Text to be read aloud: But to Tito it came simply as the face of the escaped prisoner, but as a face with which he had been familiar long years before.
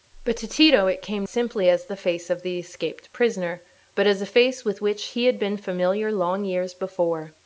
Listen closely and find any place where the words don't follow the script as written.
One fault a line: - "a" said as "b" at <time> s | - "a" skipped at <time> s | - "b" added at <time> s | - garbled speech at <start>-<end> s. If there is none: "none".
none